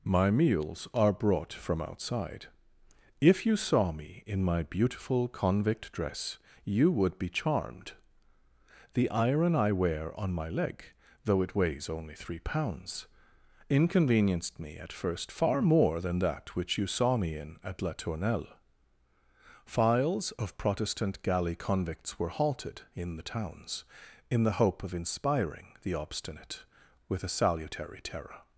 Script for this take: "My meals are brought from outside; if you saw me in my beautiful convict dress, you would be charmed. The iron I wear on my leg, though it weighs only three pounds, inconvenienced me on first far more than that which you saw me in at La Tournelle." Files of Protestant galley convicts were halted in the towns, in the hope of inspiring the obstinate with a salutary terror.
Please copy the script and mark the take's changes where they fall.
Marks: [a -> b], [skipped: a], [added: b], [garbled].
"My meals are brought from outside; if you saw me in my beautiful convict dress, you would be charmed. The iron I wear on my leg, though it weighs only three pounds, inconvenienced me [on -> at] first far more than that which you saw me in at La Tournelle." Files of Protestant galley convicts were halted in the towns, in the hope of inspiring the obstinate with a salutary terror.